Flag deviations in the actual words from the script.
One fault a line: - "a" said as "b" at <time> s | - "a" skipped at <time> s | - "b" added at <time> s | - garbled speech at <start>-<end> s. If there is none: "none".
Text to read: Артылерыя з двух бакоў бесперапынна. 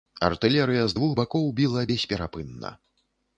- "біла" added at 1.6 s